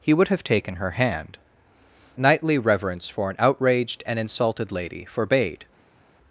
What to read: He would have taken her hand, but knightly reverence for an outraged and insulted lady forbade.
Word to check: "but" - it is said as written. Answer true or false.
false